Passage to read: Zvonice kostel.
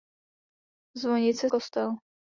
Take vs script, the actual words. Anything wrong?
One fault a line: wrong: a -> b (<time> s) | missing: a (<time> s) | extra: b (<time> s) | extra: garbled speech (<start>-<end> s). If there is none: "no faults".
no faults